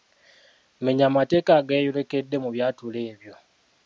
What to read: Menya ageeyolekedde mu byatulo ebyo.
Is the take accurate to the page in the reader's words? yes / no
no